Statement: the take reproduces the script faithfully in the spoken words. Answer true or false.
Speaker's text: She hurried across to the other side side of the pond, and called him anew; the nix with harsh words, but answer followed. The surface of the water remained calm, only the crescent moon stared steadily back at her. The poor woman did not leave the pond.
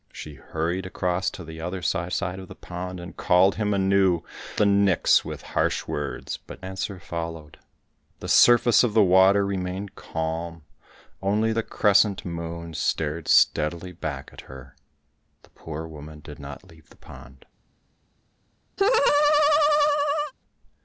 true